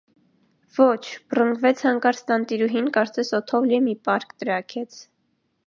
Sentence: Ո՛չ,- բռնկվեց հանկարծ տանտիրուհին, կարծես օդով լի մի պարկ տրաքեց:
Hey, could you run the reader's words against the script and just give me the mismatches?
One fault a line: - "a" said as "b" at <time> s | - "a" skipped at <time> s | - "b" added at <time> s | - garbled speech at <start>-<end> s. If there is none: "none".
none